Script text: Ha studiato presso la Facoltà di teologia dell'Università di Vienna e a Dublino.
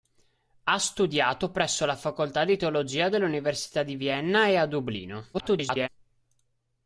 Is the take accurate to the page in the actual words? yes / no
no